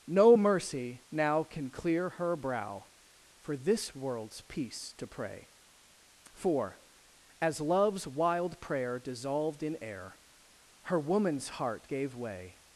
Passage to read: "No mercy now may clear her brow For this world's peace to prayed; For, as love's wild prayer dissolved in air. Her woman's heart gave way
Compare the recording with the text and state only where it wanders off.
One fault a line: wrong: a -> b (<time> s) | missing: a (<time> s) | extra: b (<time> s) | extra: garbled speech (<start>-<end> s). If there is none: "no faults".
wrong: may -> can (1.4 s)
wrong: prayed -> pray (5.1 s)